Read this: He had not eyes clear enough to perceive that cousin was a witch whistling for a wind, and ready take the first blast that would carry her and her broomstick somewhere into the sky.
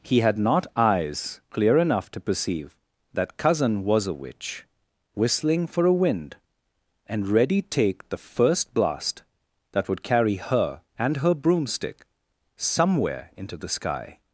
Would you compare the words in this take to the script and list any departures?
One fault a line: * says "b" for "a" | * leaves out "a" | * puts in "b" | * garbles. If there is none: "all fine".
all fine